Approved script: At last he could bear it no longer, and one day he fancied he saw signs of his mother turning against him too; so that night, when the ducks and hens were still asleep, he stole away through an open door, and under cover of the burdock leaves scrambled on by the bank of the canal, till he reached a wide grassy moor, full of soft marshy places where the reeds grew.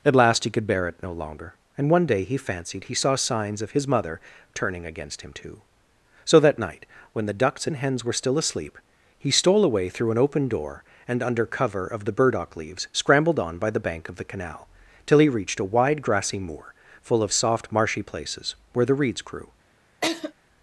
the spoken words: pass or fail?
pass